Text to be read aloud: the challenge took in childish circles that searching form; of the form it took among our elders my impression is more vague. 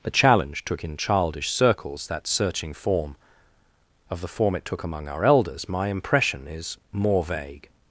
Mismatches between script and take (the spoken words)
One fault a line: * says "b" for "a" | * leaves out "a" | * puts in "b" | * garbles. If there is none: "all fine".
all fine